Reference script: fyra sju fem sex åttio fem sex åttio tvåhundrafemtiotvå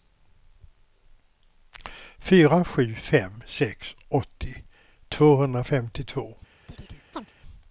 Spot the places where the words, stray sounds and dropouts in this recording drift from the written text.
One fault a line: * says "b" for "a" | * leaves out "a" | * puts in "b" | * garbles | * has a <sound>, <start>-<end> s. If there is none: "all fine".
* leaves out "fem sex åttio"
* has a chirp, 6.7-7.3 s